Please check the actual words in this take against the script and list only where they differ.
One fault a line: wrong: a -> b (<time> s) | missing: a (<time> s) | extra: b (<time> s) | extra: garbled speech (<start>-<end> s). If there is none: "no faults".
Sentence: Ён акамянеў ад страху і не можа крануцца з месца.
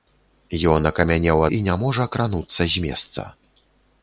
missing: ад страху (1.4 s)